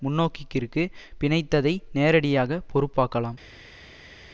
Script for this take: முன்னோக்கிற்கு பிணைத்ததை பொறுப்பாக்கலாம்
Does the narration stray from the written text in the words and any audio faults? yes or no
yes